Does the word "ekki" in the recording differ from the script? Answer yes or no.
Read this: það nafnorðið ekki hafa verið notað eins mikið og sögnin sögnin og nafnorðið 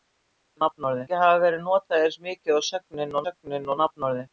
no